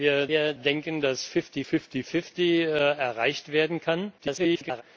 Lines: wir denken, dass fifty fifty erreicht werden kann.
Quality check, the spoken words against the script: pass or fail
fail